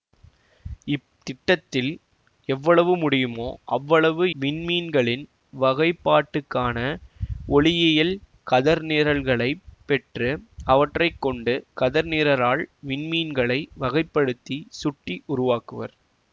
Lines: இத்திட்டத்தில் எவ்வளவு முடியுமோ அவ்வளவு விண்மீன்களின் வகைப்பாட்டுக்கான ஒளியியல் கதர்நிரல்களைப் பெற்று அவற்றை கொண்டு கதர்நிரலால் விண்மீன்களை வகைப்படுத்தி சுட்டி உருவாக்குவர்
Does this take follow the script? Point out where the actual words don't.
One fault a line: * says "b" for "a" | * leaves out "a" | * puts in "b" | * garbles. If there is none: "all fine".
all fine